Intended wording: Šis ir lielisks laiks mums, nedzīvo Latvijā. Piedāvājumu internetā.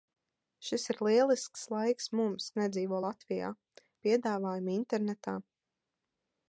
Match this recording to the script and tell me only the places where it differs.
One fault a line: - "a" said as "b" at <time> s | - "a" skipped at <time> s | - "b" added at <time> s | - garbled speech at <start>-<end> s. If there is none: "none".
none